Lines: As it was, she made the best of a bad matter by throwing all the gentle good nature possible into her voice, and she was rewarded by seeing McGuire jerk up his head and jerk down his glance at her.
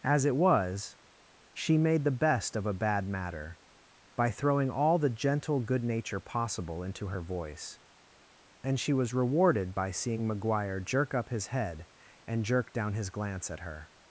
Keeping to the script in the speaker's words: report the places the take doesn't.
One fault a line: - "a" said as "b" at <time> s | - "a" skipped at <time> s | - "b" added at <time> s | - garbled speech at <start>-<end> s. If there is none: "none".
none